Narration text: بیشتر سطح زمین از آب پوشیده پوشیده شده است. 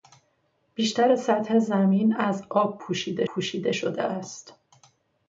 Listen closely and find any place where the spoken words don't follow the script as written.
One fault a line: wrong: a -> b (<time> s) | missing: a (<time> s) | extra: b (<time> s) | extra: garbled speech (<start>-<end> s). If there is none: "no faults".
no faults